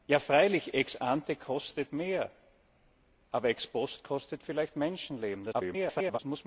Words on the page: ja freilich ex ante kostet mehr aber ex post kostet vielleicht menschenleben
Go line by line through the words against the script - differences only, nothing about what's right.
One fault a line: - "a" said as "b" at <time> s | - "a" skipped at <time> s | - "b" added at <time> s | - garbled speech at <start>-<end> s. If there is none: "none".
- garbled speech at 5.5-6.2 s